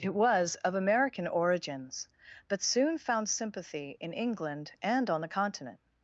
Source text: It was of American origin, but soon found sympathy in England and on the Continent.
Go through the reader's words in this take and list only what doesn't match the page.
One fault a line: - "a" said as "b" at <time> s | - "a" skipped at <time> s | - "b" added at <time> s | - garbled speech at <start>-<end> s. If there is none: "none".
- "origin" said as "origins" at 1.3 s